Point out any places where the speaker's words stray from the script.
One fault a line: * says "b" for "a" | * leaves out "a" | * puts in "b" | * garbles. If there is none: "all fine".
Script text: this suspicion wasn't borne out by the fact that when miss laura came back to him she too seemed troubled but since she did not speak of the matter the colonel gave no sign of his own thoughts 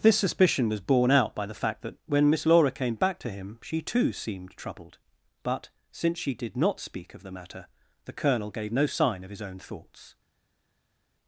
* says "was" for "wasn't"